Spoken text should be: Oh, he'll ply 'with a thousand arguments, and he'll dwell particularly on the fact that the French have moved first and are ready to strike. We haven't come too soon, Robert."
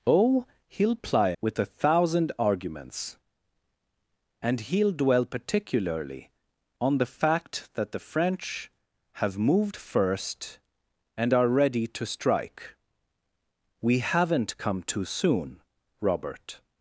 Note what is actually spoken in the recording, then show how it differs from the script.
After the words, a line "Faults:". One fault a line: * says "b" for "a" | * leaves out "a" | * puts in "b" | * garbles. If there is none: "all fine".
Oh, he'll ply 'with a thousand arguments, and he'll dwell particularly on the fact that the French have moved first and are ready to strike. We haven't come too soon, Robert."
Faults:
all fine